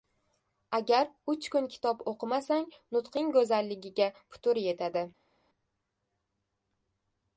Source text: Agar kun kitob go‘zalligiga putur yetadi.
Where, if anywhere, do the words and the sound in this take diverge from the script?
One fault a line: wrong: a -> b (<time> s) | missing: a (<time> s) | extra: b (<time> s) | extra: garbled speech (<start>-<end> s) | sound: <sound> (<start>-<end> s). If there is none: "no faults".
extra: uch (1.3 s)
extra: o‘qimasang nutqing (2.1 s)